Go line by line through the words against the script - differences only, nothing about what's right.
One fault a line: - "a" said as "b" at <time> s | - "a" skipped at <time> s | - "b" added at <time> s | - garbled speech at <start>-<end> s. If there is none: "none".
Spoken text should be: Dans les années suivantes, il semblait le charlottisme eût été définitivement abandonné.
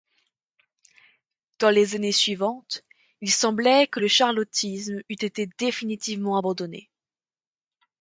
- "que" added at 3.9 s